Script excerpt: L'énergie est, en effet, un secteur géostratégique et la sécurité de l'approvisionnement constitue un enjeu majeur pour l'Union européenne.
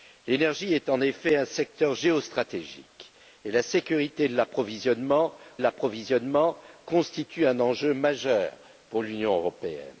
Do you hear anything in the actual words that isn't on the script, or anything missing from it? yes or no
yes